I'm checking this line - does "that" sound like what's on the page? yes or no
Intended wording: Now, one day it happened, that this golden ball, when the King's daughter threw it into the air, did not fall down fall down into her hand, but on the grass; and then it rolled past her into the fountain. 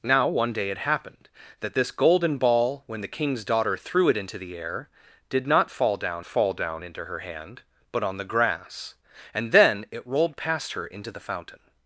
yes